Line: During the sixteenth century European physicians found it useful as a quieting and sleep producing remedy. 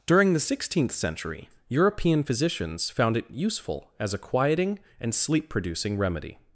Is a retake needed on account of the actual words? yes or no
no